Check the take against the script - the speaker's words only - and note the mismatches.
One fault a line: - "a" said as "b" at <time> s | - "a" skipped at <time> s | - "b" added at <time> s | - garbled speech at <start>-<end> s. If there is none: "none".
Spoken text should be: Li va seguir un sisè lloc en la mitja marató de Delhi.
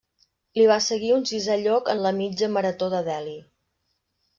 none